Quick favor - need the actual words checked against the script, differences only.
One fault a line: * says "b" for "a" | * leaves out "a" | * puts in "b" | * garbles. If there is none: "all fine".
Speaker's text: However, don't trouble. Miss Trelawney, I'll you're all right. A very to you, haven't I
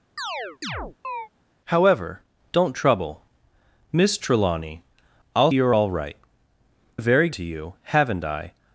all fine